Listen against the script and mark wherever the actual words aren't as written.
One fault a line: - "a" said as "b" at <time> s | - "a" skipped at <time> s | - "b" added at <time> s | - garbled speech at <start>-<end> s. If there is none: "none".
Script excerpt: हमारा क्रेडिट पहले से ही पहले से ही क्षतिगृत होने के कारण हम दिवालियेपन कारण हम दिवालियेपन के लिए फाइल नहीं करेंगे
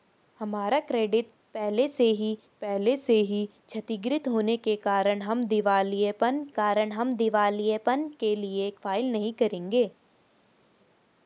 none